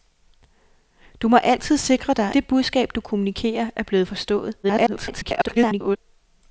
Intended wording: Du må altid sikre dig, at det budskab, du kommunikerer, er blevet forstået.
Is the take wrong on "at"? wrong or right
wrong